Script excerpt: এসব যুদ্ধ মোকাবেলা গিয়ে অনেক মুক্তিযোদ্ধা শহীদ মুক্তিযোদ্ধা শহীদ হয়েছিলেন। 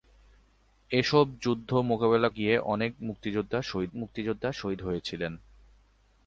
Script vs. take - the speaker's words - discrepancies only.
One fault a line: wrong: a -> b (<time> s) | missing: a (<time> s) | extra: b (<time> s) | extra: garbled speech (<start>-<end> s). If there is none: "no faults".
no faults